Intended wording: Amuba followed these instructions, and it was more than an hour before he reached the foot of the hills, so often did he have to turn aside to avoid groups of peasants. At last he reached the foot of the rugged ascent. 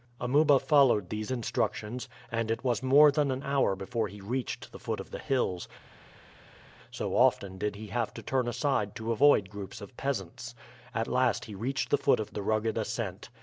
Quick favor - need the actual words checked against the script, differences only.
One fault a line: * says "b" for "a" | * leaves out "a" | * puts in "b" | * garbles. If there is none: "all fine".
all fine